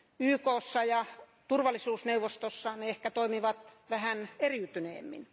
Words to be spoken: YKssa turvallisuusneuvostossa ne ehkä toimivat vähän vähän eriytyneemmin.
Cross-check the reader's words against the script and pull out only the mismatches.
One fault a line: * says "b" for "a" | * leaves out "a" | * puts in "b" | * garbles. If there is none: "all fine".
* puts in "ja"
* leaves out "vähän"